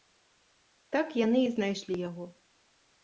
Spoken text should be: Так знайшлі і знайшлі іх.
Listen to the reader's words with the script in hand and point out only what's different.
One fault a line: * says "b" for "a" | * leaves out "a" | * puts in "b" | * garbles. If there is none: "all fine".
* says "яны" for "знайшлі"
* says "яго" for "іх"